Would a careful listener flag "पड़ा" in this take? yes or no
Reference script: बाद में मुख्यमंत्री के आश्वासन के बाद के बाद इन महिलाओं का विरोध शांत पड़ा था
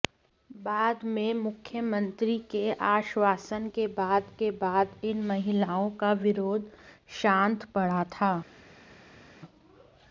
no